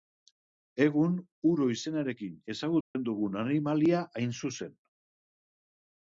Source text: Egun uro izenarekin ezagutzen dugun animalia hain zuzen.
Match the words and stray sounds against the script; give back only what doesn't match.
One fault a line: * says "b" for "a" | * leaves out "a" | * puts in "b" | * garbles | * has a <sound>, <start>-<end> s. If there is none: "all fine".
* has a dropout, 2.8-3.0 s